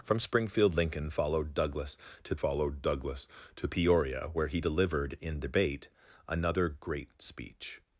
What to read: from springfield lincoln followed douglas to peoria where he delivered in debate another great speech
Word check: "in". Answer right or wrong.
right